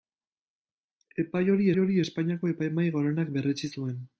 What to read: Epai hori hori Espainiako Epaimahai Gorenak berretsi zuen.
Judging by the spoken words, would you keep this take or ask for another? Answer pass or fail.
pass